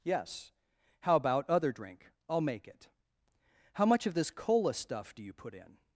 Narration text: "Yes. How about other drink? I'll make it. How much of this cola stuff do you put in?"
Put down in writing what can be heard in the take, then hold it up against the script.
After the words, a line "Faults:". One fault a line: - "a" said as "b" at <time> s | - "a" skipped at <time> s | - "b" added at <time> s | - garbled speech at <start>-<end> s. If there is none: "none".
"Yes. How about other drink? I'll make it. How much of this cola stuff do you put in?"
Faults:
none